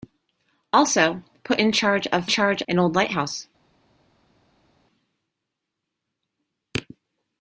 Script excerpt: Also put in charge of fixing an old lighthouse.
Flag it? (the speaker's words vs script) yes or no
yes